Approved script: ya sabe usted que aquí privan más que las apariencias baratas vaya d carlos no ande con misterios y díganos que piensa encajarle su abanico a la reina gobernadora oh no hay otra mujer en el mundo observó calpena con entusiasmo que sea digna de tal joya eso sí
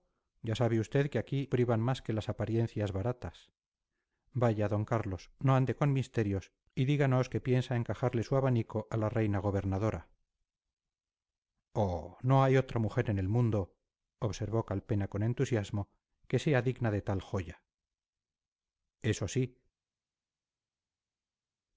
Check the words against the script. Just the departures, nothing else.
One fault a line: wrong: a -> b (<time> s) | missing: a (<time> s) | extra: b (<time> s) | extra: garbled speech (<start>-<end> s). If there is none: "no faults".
no faults